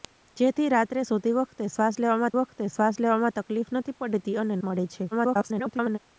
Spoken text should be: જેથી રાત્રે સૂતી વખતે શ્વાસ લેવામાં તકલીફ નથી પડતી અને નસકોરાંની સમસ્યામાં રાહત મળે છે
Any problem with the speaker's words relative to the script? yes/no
yes